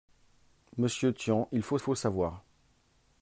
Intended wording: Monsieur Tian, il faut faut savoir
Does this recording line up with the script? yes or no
yes